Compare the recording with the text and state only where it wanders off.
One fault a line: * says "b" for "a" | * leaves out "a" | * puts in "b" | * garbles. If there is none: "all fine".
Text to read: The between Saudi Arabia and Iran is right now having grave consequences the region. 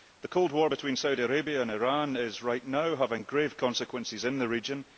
* puts in "cold war"
* puts in "in"